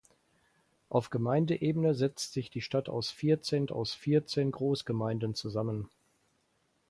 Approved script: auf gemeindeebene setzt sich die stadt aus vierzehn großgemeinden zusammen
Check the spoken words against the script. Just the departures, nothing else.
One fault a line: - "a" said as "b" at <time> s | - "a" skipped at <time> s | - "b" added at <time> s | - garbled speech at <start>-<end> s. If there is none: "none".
- "aus vierzehn" added at 3.7 s